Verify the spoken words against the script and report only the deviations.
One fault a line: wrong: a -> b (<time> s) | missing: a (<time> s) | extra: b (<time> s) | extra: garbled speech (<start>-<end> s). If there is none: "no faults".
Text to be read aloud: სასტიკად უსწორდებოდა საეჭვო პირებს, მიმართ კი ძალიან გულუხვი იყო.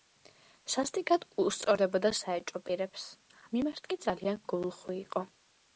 no faults